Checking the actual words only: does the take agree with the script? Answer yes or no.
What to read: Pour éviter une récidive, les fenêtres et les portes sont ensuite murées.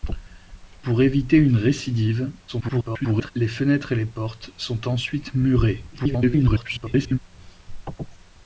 no